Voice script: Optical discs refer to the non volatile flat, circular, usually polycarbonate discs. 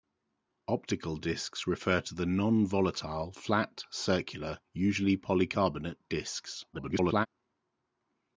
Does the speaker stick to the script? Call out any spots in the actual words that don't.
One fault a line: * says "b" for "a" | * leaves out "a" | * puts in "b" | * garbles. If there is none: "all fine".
* garbles